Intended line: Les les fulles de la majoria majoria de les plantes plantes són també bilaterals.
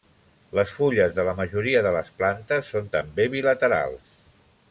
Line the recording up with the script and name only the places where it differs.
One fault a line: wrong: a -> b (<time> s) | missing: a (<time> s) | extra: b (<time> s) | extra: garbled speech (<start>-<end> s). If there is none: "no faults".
missing: les (0.7 s)
missing: majoria (1.8 s)
missing: plantes (2.7 s)